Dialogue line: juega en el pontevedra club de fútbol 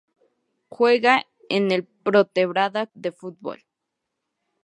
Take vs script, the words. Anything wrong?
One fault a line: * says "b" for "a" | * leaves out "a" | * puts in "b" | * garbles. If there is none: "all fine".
* leaves out "club"